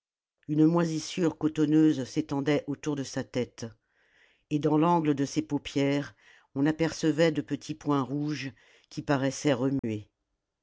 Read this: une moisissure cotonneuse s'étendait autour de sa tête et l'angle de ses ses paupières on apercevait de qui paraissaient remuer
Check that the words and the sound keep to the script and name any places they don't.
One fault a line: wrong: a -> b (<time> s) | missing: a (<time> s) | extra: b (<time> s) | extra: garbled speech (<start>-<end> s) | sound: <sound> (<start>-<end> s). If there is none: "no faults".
extra: dans (4.6 s)
missing: ses (5.4 s)
extra: petits points rouges (7.4 s)
sound: dropout (9.8-9.8 s)